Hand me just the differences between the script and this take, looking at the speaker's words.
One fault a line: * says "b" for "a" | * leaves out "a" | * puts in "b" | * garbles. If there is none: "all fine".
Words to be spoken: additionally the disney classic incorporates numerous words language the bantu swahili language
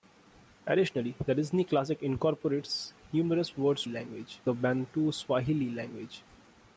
all fine